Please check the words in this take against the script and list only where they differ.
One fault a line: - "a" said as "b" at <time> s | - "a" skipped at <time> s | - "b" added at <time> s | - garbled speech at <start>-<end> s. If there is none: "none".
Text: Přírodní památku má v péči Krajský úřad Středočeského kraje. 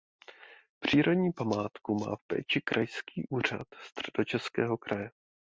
none